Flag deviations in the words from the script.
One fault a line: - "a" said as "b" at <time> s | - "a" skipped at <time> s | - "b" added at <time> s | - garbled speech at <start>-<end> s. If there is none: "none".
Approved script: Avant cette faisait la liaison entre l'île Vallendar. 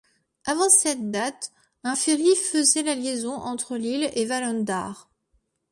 - "date un ferry" added at 1.1 s
- "et" added at 4.1 s